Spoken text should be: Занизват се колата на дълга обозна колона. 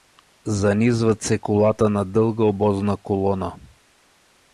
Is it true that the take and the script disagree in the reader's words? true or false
false